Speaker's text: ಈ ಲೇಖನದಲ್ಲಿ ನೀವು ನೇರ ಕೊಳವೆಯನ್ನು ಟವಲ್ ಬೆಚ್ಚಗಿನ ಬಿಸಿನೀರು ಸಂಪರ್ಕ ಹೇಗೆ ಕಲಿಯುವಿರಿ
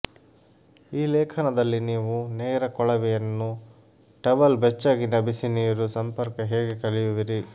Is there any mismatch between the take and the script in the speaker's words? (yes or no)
no